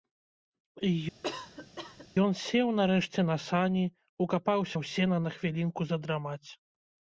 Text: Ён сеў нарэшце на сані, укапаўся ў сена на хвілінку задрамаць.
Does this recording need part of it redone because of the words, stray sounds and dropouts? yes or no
yes